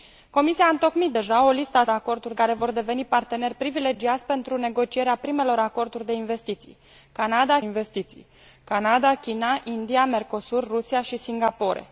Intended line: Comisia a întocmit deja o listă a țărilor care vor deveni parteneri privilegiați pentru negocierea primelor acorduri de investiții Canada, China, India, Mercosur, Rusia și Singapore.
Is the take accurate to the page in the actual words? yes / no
no